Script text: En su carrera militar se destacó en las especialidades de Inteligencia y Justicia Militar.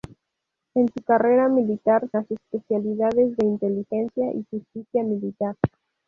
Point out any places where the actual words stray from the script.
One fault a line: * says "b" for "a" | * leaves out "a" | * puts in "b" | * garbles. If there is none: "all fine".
* leaves out "se destacó en"